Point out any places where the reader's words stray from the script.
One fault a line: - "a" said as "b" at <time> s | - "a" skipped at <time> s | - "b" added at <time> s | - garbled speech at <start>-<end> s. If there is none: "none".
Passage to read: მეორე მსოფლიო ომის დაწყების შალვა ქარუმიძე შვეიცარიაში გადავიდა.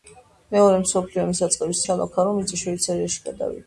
none